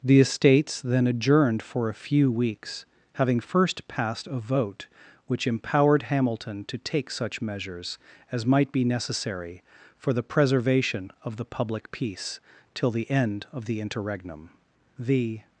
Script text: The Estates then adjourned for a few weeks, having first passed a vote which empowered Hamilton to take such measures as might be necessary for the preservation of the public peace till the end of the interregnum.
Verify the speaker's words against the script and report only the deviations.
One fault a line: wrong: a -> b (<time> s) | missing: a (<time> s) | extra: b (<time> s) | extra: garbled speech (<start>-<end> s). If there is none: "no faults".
extra: The (15.0 s)